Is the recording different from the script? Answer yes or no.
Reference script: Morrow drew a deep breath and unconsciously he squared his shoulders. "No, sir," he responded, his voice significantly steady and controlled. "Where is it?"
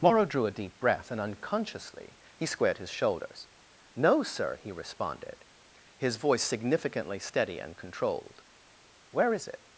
no